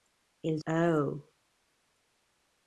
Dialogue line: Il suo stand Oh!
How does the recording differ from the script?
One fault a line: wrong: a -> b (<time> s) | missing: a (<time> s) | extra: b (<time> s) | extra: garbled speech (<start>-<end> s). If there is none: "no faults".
missing: suo stand (0.6 s)